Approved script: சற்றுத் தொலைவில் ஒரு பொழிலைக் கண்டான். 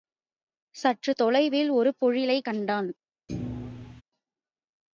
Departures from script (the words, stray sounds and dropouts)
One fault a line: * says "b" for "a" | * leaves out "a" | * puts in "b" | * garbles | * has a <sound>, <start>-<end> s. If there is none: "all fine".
* has a thud, 3.3-4.0 s